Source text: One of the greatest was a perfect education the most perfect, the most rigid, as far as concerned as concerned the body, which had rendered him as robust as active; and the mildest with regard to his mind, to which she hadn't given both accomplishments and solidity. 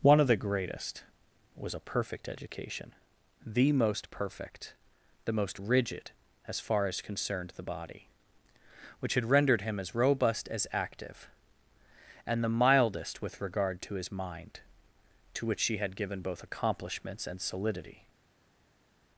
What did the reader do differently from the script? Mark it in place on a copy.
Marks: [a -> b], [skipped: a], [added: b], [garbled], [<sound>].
One of the greatest was a perfect education the most perfect, the most rigid, as far as concerned [skipped: as concerned] the body, which had rendered him as robust as active; and the mildest with regard to his mind, to which she [hadn't -> had] given both accomplishments and solidity.